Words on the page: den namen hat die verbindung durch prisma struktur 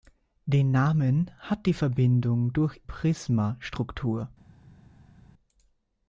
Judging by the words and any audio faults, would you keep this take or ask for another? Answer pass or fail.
pass